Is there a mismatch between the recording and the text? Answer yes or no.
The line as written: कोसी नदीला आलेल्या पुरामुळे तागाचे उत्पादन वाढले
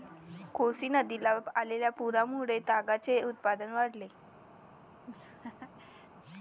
no